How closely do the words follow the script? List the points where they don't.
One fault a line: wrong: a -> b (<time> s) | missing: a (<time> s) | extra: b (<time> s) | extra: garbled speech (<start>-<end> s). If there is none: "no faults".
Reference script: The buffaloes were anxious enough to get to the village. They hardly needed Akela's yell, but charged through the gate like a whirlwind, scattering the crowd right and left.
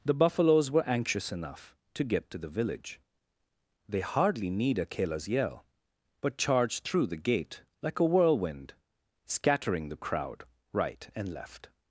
wrong: needed -> need (4.5 s)